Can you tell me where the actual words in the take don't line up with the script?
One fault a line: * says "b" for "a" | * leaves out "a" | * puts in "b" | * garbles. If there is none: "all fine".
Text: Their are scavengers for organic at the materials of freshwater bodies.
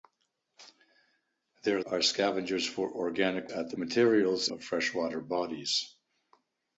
all fine